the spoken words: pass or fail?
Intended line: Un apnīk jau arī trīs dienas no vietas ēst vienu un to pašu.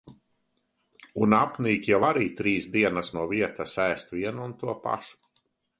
pass